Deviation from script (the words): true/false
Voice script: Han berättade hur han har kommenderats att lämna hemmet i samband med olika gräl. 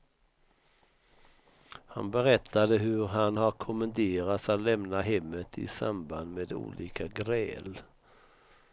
false